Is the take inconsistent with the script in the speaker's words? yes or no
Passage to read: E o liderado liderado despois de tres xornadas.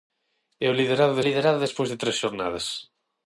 no